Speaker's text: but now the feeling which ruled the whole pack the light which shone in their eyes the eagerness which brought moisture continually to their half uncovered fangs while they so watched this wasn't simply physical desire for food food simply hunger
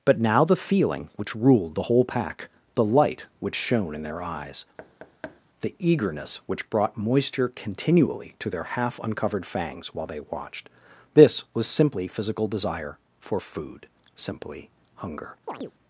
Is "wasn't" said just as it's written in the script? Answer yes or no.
no